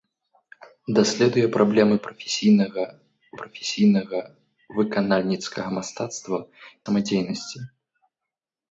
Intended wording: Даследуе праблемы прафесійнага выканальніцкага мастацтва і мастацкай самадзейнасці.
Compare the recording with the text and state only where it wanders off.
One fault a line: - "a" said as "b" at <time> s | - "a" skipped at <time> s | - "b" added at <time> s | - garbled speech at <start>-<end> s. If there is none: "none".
- "прафесійнага" added at 3.4 s
- "і мастацкай" skipped at 6.4 s